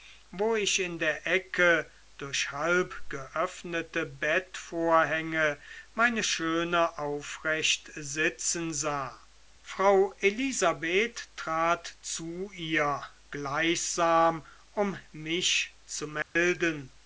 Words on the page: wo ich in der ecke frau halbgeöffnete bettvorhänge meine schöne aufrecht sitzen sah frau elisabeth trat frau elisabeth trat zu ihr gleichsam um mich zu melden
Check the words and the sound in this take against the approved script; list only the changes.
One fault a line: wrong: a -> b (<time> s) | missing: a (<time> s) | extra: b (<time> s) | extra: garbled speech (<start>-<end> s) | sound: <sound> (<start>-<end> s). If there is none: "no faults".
wrong: frau -> durch (2.2 s)
missing: frau elisabeth trat (12.0 s)
sound: dropout (16.2-16.4 s)